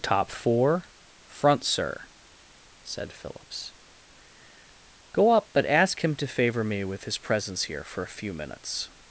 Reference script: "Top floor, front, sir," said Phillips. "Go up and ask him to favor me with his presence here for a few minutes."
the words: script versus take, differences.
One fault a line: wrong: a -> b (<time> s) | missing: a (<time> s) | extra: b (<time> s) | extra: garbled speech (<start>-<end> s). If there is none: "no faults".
wrong: floor -> four (0.3 s)
wrong: and -> but (5.5 s)